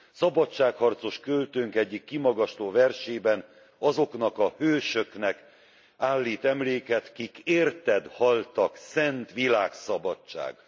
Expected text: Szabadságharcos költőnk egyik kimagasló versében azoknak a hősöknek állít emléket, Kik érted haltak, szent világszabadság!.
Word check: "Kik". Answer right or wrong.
right